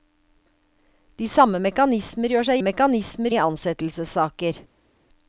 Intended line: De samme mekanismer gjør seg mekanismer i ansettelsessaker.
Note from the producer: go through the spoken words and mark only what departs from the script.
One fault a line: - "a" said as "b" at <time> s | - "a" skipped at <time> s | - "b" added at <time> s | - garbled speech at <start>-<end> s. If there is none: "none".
none